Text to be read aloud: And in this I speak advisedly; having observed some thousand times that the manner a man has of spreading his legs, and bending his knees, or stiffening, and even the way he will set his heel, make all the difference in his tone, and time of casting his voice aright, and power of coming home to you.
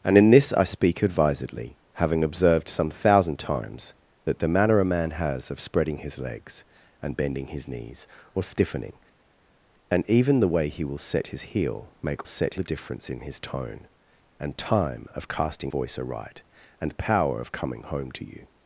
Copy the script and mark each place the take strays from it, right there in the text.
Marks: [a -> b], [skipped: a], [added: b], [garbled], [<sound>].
And in this I speak advisedly; having observed some thousand times that the manner a man has of spreading his legs, and bending his knees, or stiffening, and even the way he will set his heel, make [all -> set] the difference in his tone, and time of casting [skipped: his] voice aright, and power of coming home to you.